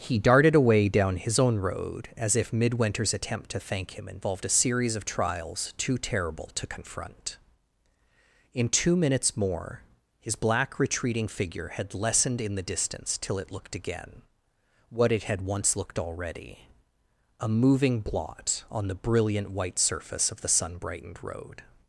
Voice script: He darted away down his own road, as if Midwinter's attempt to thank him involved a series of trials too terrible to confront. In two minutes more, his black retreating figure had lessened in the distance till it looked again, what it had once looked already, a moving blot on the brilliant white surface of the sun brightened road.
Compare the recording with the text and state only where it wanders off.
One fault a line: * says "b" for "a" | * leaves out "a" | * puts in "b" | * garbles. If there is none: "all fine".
all fine